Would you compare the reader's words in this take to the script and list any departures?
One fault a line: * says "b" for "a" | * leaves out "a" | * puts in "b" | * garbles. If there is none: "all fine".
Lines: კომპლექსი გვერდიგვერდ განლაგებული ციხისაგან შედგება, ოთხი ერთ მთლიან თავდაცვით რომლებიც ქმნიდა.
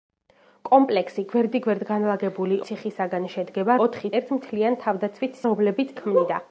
all fine